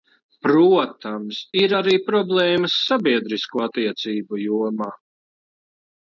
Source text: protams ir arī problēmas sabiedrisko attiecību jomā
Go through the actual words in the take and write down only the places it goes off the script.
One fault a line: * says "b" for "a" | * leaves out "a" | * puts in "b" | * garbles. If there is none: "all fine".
all fine